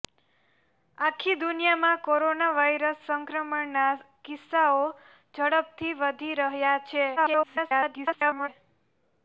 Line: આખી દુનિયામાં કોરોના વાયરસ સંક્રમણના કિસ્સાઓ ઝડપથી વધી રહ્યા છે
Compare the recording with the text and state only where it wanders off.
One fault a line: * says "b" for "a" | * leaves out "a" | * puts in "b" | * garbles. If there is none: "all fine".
* garbles